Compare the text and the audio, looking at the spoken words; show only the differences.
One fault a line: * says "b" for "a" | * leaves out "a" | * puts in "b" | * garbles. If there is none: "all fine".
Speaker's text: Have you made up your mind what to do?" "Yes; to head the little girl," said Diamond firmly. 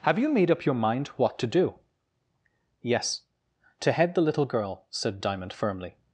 all fine